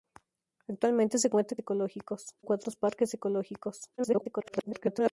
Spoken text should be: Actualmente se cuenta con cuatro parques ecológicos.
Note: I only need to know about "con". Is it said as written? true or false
false